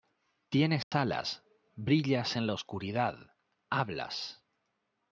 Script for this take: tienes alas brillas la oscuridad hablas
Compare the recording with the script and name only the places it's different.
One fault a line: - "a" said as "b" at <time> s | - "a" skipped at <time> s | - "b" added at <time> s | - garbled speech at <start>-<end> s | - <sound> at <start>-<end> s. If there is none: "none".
- dropout at 0.8-0.9 s
- "en" added at 2.4 s